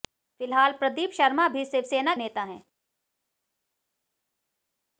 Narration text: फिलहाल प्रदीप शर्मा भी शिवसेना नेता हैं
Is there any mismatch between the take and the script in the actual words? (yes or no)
no